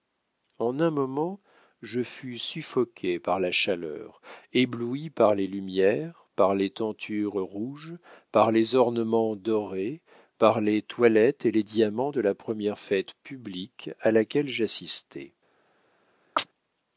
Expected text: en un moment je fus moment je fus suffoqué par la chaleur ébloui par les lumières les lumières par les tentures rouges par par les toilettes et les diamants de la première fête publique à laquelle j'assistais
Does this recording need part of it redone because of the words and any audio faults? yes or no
yes